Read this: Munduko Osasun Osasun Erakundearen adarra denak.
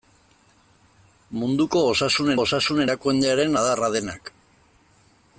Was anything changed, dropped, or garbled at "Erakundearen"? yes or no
no